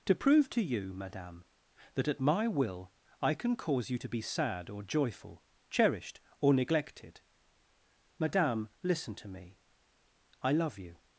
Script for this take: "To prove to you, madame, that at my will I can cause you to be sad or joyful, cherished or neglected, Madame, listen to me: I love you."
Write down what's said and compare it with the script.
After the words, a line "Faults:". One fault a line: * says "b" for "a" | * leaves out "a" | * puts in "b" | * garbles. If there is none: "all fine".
"To prove to you, madame, that at my will I can cause you to be sad or joyful, cherished or neglected, Madame, listen to me: I love you."
Faults:
all fine